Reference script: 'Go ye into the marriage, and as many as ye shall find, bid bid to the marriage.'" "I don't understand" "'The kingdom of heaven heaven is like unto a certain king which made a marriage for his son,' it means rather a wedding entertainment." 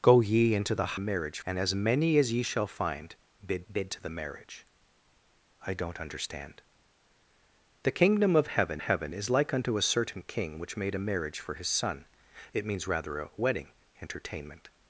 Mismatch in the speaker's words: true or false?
false